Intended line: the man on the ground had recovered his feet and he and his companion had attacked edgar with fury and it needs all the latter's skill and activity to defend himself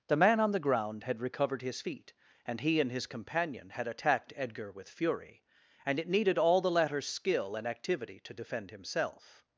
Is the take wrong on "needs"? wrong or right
wrong